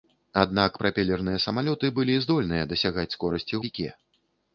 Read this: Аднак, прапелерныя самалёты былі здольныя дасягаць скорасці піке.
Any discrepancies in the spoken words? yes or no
no